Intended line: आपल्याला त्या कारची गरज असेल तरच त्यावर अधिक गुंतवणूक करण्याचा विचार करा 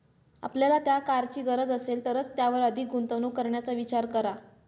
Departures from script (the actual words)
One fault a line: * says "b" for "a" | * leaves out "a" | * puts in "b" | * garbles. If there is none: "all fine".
all fine